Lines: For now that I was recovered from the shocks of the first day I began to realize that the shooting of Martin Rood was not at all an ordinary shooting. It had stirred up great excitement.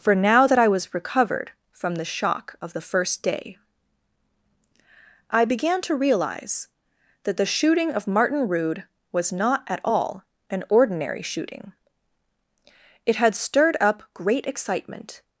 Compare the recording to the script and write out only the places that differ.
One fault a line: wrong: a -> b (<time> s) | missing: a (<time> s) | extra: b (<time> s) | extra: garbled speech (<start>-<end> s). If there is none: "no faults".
wrong: shocks -> shock (2.0 s)